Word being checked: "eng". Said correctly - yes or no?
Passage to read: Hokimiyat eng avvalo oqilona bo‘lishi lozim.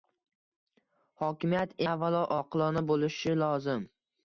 no